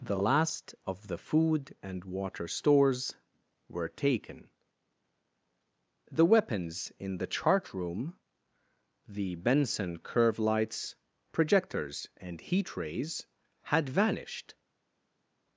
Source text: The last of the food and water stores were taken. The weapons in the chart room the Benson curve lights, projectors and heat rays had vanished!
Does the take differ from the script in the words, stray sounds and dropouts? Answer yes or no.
no